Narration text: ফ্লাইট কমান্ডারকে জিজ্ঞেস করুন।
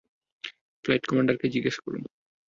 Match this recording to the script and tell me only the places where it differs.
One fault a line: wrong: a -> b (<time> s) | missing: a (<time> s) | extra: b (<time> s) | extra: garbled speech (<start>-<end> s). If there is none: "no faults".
no faults